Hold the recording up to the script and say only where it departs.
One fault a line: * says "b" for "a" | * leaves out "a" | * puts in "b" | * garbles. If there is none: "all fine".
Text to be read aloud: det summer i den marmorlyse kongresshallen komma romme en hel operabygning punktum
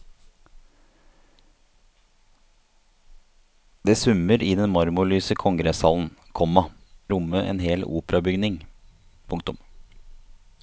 all fine